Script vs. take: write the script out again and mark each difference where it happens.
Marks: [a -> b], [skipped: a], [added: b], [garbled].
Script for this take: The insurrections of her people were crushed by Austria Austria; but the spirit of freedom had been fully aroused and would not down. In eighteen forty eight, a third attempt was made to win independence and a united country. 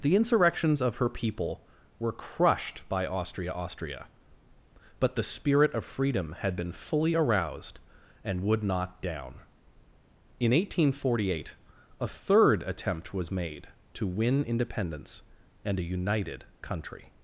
The insurrections of her people were crushed by Austria Austria; but the spirit of freedom had been fully aroused and would not down. In eighteen forty eight, a third attempt was made to win independence and a united country.